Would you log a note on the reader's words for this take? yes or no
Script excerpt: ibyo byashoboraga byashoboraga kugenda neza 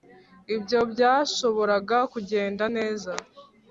yes